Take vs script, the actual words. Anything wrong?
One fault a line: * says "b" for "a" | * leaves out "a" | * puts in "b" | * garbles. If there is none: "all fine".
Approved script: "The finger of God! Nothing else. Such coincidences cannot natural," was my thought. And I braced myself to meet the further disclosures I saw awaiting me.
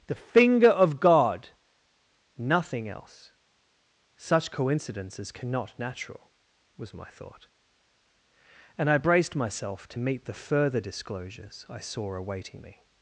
all fine